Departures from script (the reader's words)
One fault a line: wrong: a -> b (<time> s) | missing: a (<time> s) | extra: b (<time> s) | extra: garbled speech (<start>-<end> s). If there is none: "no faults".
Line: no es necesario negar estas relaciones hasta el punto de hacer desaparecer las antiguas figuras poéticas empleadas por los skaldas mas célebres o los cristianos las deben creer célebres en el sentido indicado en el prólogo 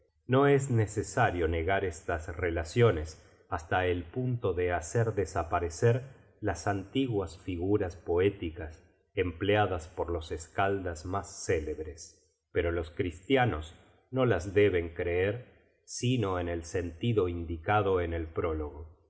wrong: o -> pero (12.5 s)
extra: no (14.1 s)
wrong: célebres -> sino (15.8 s)